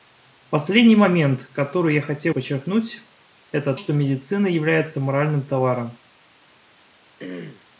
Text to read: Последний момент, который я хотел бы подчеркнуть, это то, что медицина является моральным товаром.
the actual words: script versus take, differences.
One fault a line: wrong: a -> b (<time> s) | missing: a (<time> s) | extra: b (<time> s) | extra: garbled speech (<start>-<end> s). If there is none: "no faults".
missing: бы (2.3 s)
missing: то (3.7 s)